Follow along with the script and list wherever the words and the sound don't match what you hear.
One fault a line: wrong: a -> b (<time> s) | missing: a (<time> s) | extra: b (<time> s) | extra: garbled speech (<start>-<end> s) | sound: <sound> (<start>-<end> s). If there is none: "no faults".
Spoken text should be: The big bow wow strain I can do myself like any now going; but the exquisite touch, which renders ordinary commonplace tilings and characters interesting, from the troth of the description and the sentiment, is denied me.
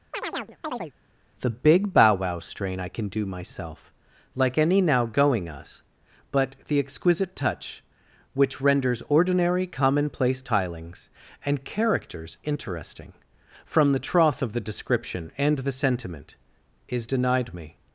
sound: chirp (0.1-0.9 s)
extra: us (5.5 s)